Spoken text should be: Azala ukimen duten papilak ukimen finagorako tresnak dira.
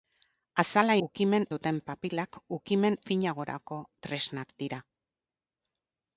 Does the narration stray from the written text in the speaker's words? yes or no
no